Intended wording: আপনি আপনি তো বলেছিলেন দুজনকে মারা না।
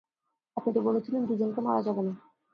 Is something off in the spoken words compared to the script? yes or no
yes